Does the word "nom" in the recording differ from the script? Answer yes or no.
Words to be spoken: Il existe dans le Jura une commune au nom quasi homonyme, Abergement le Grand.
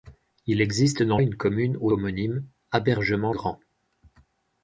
yes